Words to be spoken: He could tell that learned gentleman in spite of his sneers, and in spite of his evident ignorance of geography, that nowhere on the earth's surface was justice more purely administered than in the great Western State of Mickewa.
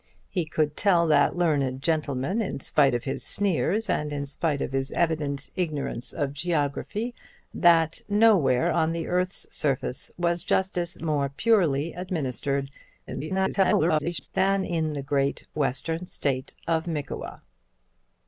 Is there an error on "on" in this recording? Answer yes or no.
no